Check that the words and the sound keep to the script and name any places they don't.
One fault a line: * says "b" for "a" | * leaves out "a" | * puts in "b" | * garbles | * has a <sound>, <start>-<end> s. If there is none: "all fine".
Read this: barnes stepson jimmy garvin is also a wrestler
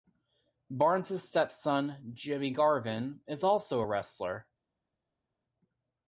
all fine